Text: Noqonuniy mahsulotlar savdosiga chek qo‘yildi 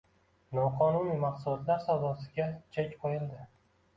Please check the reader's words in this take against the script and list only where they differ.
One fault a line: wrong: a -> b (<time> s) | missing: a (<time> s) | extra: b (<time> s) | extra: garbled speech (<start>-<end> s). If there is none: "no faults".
no faults